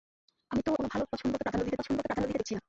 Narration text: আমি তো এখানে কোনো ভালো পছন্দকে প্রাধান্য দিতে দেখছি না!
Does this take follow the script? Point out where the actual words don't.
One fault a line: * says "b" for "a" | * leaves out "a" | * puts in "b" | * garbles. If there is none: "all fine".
* leaves out "এখানে"
* puts in "পছন্দকে প্রাধান্য দিতে"